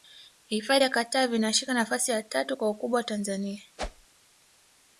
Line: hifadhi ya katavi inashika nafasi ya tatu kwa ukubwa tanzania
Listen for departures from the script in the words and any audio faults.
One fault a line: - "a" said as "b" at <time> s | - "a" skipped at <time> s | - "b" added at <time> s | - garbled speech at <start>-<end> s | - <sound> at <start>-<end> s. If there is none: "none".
- whoosh at 3.8-4.1 s